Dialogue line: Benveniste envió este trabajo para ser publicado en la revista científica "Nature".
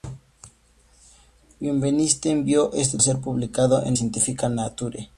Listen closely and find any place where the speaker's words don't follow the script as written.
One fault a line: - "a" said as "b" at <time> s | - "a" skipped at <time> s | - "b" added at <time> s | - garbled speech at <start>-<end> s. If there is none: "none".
- "trabajo para" skipped at 3.0 s
- "la revista" skipped at 3.9 s